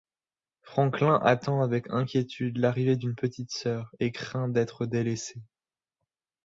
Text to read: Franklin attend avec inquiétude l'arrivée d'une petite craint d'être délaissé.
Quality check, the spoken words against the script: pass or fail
fail